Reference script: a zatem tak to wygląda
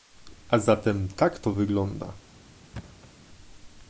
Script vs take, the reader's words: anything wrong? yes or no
no